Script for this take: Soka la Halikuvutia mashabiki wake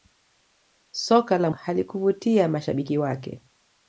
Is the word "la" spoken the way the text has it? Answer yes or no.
yes